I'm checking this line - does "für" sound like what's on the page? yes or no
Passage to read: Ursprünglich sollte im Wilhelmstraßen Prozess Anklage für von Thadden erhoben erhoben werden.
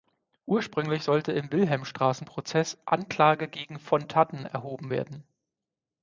no